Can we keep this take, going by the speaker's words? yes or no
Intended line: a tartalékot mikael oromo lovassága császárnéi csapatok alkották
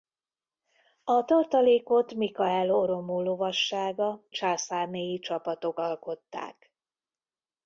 yes